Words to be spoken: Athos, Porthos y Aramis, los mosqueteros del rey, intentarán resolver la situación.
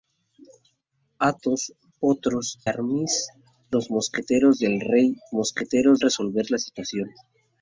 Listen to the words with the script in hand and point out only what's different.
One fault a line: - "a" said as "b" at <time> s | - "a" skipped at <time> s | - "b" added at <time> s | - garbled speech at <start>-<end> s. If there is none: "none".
- "y" skipped at 2.6 s
- "intentarán" said as "mosqueteros" at 5.3 s